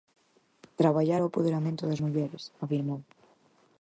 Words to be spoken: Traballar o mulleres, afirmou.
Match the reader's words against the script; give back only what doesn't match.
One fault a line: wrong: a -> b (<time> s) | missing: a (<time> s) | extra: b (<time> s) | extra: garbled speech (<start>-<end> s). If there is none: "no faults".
extra: apoderamento das (1.3 s)